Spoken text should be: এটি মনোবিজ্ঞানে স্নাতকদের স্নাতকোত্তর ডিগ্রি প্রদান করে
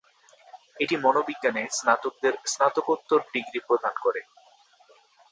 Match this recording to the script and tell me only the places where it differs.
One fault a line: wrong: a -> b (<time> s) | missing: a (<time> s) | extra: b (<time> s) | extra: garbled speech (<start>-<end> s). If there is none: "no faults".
no faults